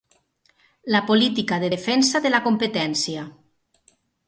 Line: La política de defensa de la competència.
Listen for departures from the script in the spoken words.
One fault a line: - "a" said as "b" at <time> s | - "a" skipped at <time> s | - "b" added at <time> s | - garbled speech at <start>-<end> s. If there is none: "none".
none